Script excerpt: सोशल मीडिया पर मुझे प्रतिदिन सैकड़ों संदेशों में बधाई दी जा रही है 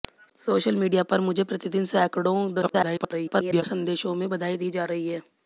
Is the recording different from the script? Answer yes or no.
yes